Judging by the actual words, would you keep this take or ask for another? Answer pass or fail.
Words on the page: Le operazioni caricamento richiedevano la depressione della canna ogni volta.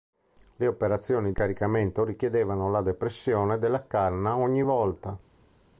pass